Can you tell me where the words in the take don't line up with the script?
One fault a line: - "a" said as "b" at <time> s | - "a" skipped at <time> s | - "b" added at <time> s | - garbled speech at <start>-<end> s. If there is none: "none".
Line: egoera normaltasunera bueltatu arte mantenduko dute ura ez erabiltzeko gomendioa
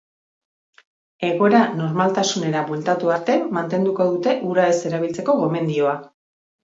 none